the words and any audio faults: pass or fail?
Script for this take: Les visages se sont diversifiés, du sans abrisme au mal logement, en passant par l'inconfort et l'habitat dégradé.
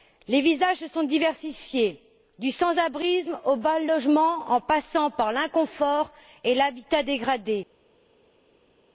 pass